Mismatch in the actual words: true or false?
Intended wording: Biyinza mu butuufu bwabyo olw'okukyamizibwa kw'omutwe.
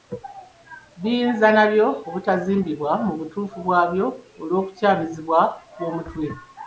true